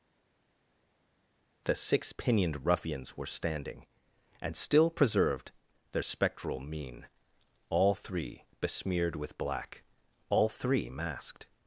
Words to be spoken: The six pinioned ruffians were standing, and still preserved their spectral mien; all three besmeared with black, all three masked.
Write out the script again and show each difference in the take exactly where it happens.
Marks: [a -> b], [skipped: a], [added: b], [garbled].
The six pinioned ruffians were standing, and still preserved their spectral mien; all three besmeared with black, all three masked.